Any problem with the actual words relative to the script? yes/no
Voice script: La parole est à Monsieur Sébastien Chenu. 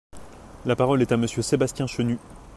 no